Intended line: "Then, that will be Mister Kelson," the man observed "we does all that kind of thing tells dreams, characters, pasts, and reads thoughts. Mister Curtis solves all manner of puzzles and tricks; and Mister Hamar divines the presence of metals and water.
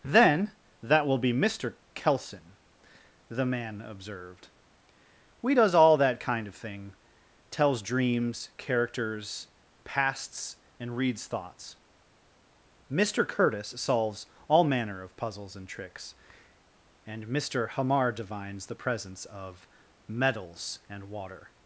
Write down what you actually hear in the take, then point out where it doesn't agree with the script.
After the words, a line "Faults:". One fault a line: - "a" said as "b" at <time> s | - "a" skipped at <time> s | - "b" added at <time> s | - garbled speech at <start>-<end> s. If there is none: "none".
"Then, that will be Mister Kelson," the man observed "we does all that kind of thing tells dreams, characters, pasts, and reads thoughts. Mister Curtis solves all manner of puzzles and tricks; and Mister Hamar divines the presence of metals and water.
Faults:
none